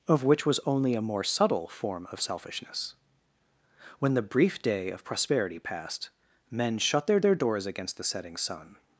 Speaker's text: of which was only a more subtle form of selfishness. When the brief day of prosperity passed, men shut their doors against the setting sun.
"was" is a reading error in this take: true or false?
false